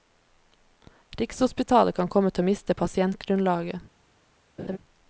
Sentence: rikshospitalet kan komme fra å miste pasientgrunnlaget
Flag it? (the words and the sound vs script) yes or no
yes